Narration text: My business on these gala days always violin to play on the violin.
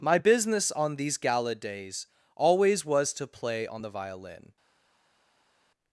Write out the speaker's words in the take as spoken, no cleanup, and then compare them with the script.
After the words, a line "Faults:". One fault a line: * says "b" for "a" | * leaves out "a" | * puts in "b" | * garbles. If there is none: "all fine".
My business on these gala days always was to play on the violin.
Faults:
* says "was" for "violin"